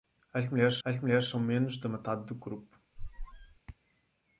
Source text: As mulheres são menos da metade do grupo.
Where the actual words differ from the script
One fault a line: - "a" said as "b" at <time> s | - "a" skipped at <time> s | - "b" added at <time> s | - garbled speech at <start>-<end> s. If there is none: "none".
- "as mulheres" added at 0.8 s